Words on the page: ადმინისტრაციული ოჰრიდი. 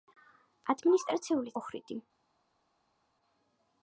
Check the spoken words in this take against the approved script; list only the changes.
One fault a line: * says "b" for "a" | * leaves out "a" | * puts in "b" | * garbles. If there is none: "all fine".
all fine